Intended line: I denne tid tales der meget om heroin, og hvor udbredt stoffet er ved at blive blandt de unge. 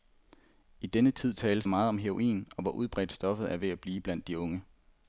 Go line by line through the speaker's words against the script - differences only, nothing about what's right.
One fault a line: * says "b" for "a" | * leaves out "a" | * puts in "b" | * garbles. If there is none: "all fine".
* leaves out "der"